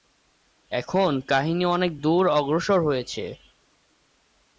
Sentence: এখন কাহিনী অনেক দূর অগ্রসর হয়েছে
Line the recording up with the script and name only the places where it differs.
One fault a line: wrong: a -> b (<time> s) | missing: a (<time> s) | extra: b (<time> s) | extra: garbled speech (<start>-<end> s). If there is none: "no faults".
no faults